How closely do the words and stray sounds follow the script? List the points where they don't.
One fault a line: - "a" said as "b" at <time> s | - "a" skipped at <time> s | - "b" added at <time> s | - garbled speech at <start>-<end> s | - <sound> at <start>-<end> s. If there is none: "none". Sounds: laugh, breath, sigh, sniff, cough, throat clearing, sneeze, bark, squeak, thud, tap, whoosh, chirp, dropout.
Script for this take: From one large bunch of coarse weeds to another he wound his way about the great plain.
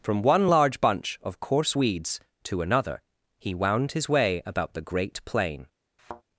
- thud at 6.0-6.2 s